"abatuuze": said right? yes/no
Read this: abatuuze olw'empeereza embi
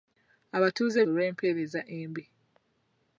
yes